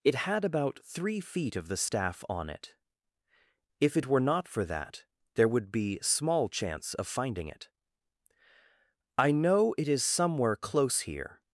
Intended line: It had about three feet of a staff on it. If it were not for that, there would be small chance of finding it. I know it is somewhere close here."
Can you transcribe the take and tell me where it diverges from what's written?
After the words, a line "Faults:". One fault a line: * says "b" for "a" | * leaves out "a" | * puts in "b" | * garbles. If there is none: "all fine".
It had about three feet of the staff on it. If it were not for that, there would be small chance of finding it. I know it is somewhere close here."
Faults:
* says "the" for "a"